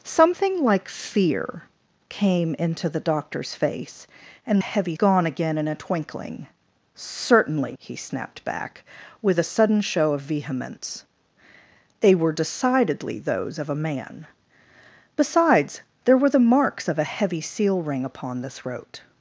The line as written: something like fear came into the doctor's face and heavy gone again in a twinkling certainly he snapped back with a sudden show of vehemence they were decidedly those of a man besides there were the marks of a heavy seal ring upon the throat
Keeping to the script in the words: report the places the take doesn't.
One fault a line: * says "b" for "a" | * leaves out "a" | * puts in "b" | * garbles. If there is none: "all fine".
all fine